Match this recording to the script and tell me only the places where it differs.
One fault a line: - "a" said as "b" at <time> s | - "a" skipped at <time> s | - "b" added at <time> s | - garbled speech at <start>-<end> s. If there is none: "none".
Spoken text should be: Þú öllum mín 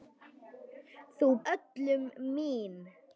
none